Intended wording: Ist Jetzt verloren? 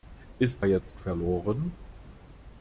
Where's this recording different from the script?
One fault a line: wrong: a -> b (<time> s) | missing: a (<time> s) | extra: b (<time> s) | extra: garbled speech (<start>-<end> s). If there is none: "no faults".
no faults